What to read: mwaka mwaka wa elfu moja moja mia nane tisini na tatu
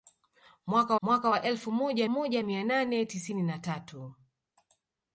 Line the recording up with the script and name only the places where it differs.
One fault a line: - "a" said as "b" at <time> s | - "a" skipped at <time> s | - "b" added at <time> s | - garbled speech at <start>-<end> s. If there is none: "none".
none